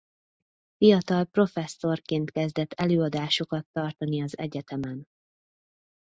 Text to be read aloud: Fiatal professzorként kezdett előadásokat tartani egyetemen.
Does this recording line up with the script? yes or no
no